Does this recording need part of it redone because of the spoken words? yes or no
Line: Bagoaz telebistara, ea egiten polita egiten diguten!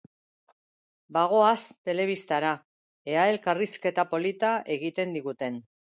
yes